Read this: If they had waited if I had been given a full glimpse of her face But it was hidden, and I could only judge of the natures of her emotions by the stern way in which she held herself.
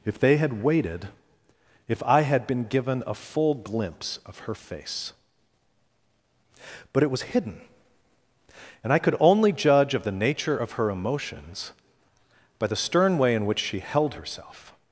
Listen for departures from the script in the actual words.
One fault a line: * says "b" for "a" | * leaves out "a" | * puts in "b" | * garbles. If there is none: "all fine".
* says "nature" for "natures"